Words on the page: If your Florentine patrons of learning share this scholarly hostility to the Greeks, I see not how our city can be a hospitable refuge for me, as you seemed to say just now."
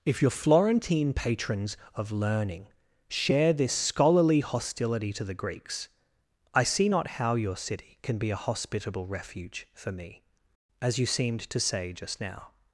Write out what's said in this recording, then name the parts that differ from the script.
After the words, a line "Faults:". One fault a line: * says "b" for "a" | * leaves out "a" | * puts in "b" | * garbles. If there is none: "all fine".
If your Florentine patrons of learning share this scholarly hostility to the Greeks, I see not how your city can be a hospitable refuge for me, as you seemed to say just now."
Faults:
* says "your" for "our"